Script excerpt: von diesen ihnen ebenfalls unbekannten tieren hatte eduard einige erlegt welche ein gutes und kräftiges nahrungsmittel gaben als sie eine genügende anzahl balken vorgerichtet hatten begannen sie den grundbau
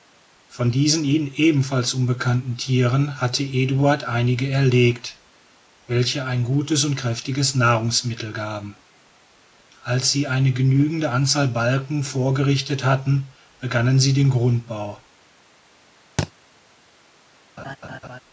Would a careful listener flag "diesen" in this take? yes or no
no